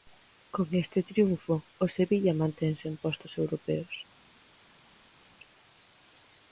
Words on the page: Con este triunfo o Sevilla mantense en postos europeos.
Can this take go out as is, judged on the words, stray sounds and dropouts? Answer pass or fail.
pass